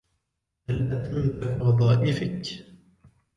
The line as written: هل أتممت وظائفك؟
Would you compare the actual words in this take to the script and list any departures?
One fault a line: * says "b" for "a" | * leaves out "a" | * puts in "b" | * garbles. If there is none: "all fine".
all fine